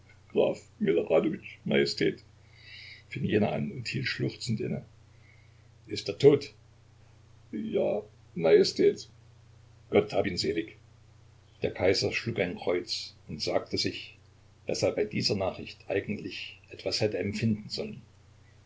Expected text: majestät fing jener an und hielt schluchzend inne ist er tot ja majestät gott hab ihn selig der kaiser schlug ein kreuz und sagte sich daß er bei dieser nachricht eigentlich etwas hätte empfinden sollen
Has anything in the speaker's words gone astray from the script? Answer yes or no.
no